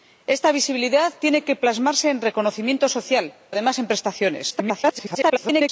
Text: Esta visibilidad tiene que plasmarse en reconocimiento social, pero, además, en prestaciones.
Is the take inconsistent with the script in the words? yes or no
yes